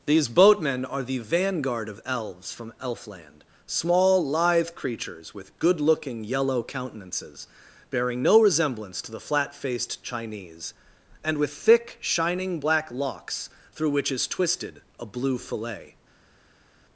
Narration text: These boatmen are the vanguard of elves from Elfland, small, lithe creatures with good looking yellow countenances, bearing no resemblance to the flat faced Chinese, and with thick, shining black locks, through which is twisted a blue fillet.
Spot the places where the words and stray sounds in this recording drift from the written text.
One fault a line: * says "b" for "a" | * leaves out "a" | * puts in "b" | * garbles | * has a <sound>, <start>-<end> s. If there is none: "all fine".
all fine